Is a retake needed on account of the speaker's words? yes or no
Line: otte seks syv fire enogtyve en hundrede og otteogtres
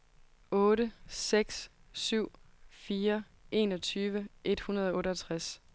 yes